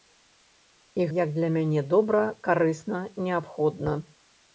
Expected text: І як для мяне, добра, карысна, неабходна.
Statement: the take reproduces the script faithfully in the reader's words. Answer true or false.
true